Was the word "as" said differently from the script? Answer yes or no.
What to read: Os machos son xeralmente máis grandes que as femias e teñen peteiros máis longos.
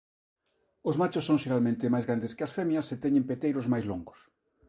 no